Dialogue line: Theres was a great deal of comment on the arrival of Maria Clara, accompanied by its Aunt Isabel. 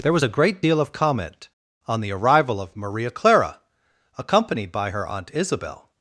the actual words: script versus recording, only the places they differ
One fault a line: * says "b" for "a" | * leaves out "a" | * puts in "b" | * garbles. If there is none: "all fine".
* says "There" for "Theres"
* says "her" for "its"